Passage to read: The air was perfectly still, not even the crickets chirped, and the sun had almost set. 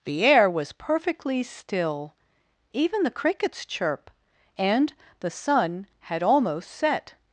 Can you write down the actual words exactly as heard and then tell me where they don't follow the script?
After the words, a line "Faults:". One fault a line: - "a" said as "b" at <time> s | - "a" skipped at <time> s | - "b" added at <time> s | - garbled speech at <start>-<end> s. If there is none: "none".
The air was perfectly still, even the crickets chirp, and the sun had almost set.
Faults:
- "not" skipped at 2.1 s
- "chirped" said as "chirp" at 3.6 s